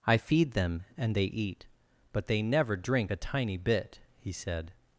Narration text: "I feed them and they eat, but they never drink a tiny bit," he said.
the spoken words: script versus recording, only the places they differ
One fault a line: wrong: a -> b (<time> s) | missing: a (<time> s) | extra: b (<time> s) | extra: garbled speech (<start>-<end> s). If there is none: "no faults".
no faults